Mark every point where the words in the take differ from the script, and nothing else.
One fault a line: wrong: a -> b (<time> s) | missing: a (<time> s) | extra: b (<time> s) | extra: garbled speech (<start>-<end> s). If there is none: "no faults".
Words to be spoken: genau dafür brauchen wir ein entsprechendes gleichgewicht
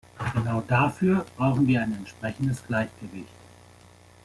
no faults